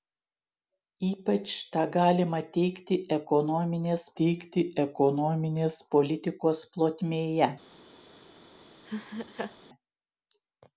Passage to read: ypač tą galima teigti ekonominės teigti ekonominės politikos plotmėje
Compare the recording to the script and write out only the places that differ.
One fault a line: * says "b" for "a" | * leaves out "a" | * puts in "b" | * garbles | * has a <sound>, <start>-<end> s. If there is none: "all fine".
* has a laugh, 8.8-9.6 s